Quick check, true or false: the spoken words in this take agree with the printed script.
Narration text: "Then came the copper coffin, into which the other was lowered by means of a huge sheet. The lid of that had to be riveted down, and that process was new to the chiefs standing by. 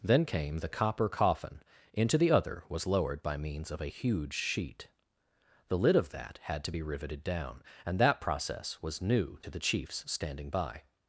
false